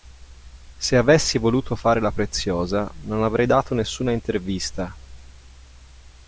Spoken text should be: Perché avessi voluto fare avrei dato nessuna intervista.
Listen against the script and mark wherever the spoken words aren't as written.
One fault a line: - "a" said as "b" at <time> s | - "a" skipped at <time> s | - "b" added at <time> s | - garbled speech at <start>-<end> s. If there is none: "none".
- "Perché" said as "Se" at 0.8 s
- "la preziosa non" added at 2.0 s